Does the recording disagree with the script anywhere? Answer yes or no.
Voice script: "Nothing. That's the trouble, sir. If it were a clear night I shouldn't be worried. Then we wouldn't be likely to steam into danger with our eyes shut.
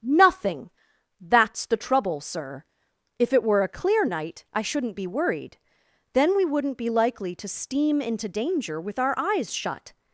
no